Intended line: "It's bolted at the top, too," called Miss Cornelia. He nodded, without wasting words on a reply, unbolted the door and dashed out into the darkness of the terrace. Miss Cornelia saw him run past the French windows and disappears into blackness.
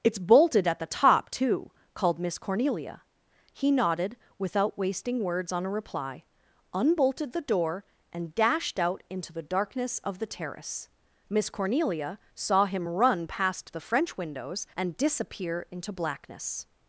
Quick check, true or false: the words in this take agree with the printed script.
false